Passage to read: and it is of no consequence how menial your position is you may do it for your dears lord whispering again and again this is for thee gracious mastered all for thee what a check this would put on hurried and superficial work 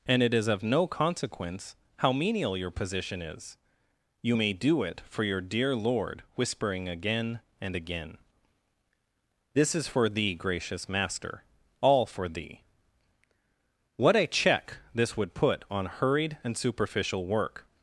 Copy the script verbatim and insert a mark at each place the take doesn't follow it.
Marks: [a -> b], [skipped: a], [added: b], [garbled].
and it is of no consequence how menial your position is you may do it for your [dears -> dear] lord whispering again and again this is for thee gracious [mastered -> master] all for thee what a check this would put on hurried and superficial work